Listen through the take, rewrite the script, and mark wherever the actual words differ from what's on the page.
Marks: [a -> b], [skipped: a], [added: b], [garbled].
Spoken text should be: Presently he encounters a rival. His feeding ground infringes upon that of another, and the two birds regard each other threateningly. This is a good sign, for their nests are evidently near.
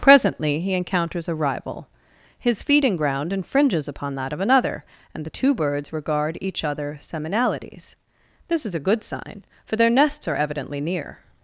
Presently he encounters a rival. His feeding ground infringes upon that of another, and the two birds regard each other [threateningly. -> seminalities] This is a good sign, for their nests are evidently near.